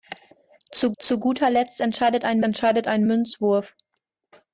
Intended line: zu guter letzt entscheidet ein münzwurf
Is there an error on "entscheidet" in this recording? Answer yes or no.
no